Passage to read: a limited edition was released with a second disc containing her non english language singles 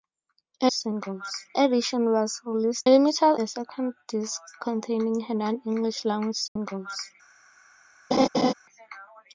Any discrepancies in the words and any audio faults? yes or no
yes